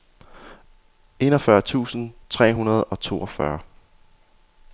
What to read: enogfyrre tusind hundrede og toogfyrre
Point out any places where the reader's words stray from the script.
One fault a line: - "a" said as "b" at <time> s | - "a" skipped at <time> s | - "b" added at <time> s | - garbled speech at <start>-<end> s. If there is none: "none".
- "tre" added at 2.3 s